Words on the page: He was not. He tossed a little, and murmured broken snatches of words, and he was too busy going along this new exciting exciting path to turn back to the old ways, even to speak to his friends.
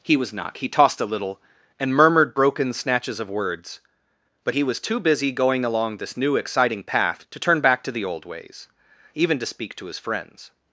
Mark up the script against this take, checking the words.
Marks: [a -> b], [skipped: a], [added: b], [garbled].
He was not. He tossed a little, and murmured broken snatches of words, [and -> but] he was too busy going along this new exciting [skipped: exciting] path to turn back to the old ways, even to speak to his friends.